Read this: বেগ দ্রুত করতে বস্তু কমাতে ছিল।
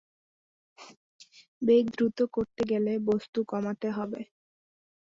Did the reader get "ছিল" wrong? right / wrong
wrong